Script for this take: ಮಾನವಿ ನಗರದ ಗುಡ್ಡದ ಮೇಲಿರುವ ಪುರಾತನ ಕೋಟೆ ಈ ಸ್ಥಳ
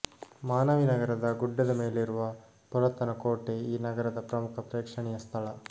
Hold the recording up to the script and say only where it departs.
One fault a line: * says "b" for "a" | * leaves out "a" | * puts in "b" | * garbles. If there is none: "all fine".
* puts in "ನಗರದ ಪ್ರಮುಖ ಪ್ರೇಕ್ಷಣೀಯ"